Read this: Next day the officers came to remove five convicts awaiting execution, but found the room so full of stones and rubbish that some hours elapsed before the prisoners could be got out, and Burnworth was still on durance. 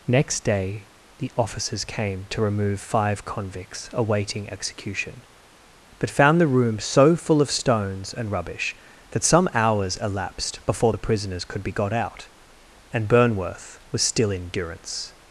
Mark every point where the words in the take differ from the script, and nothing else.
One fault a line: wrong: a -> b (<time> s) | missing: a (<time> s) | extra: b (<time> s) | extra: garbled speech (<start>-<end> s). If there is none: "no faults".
wrong: on -> in (14.3 s)